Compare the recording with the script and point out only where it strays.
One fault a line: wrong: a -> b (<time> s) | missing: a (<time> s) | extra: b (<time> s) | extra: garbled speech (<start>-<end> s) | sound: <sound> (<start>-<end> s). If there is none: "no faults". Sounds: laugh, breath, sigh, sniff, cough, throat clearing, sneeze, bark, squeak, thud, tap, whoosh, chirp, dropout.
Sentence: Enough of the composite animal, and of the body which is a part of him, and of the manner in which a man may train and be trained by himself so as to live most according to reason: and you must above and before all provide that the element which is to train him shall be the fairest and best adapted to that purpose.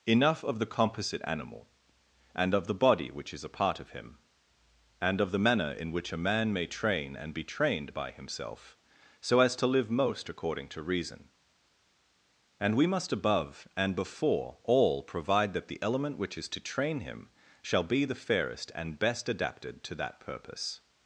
wrong: you -> we (12.8 s)